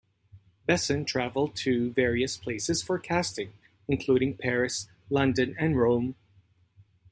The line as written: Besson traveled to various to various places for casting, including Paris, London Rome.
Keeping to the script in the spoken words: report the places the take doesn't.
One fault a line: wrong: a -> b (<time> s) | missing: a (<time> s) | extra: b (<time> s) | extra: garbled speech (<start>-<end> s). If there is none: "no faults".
missing: to various (2.4 s)
extra: and (5.6 s)